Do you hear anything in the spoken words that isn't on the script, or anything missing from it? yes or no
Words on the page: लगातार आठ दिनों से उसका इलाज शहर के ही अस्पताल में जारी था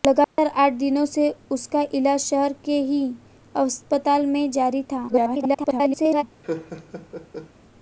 yes